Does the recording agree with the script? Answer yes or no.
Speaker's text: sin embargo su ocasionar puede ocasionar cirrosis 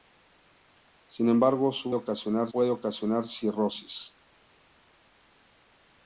yes